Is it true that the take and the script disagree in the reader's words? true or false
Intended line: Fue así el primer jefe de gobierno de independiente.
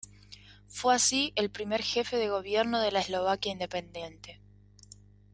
true